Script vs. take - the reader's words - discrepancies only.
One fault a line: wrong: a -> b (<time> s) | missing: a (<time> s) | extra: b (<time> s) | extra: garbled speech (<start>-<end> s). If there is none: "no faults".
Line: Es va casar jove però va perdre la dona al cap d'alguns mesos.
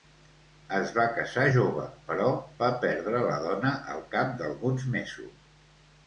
no faults